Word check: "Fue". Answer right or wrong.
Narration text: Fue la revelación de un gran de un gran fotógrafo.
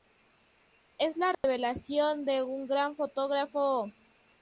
wrong